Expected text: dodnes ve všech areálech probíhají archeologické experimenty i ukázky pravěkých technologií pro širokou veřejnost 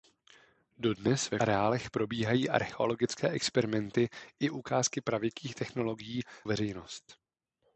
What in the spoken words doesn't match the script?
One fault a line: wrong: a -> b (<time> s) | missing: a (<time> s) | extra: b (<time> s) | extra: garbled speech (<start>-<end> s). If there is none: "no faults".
missing: všech (1.4 s)
missing: pro širokou (6.2 s)